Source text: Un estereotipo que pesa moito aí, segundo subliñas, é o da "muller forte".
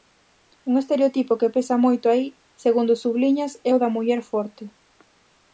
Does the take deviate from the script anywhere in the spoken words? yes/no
no